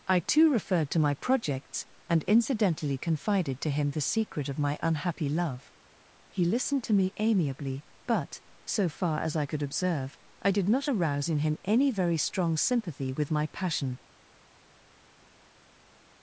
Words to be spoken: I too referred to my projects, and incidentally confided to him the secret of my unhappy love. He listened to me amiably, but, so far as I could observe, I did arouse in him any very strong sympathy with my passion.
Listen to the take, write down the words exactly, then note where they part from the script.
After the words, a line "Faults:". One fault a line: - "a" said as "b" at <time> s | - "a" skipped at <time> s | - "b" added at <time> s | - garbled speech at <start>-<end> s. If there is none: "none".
I too referred to my projects, and incidentally confided to him the secret of my unhappy love. He listened to me amiably, but, so far as I could observe, I did not arouse in him any very strong sympathy with my passion.
Faults:
- "not" added at 10.7 s